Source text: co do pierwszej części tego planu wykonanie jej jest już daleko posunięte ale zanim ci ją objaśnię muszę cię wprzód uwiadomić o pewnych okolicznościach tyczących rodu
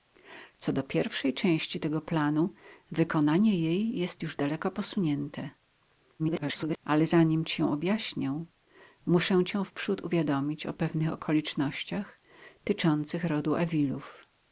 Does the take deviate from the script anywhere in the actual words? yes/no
yes